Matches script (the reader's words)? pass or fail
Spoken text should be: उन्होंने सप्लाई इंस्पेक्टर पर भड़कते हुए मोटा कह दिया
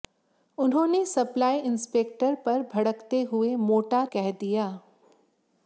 pass